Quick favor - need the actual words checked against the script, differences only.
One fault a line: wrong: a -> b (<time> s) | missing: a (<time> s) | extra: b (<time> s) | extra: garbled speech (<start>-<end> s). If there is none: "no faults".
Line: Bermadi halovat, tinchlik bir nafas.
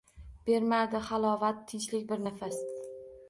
no faults